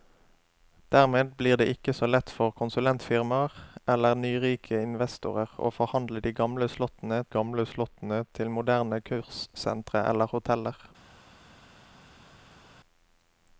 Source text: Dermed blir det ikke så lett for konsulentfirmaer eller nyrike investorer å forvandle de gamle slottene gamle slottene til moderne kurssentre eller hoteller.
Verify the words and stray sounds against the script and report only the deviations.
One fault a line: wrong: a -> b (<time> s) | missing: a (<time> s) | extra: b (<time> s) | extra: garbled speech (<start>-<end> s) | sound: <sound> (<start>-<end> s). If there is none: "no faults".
no faults